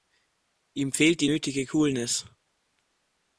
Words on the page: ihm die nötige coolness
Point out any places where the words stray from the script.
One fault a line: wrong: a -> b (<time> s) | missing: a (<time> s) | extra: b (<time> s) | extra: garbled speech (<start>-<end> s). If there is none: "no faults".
extra: fehlt (0.9 s)